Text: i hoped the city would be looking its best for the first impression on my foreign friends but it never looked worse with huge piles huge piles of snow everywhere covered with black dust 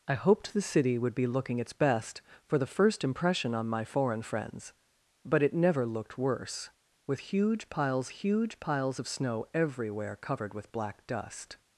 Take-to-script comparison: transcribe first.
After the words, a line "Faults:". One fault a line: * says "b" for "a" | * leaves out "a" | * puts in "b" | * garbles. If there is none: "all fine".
i hoped the city would be looking its best for the first impression on my foreign friends but it never looked worse with huge piles huge piles of snow everywhere covered with black dust
Faults:
all fine